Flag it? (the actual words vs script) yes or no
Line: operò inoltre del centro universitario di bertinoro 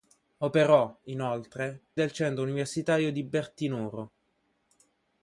no